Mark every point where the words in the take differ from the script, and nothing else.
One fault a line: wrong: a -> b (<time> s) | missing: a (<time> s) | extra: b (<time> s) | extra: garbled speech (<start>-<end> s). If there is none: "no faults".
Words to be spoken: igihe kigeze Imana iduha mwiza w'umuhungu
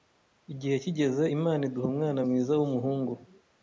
extra: umwana (1.9 s)